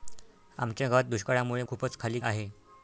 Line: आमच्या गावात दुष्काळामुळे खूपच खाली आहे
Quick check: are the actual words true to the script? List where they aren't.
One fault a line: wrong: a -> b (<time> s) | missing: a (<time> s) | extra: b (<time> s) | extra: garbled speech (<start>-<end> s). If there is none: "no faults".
no faults